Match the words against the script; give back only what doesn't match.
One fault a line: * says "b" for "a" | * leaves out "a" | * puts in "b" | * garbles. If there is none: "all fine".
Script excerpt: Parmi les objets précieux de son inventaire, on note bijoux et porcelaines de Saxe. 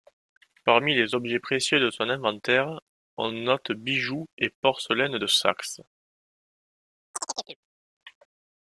all fine